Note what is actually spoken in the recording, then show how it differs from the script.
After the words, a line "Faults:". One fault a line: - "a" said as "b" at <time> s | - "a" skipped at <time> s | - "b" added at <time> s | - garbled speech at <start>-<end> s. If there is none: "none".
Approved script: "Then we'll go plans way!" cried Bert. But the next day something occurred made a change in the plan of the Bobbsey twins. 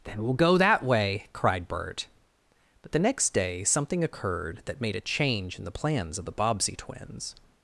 "Then we'll go that way!" cried Bert. But the next day something occurred that made a change in the plans of the Bobbsey twins.
Faults:
- "plans" said as "that" at 0.6 s
- "that" added at 4.7 s
- "plan" said as "plans" at 5.7 s